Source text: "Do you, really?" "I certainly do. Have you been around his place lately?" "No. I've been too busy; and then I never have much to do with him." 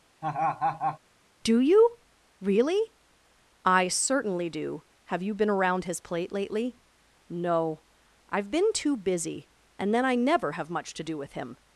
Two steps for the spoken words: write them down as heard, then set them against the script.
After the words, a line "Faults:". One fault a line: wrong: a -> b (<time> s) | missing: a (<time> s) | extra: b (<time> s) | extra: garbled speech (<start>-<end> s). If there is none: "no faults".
"Do you, really?" "I certainly do. Have you been around his plate lately?" "No. I've been too busy; and then I never have much to do with him."
Faults:
wrong: place -> plate (6.0 s)